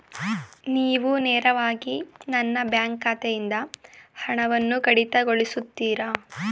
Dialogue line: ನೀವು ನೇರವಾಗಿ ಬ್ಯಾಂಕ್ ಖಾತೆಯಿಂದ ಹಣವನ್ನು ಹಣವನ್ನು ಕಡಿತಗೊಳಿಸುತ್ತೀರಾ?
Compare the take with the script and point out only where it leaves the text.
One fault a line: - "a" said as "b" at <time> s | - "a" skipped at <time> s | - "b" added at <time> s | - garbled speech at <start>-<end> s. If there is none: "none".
- "ನನ್ನ" added at 2.3 s
- "ಹಣವನ್ನು" skipped at 4.8 s